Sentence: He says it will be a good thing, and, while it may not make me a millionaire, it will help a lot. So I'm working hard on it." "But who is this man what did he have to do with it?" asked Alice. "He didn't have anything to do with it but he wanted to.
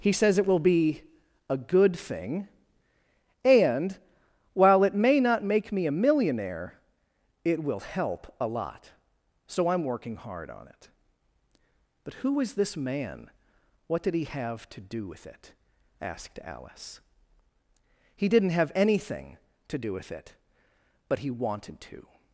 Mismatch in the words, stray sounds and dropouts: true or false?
false